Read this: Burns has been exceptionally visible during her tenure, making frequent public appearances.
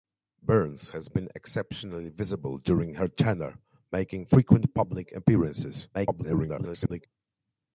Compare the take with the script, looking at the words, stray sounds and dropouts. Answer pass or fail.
fail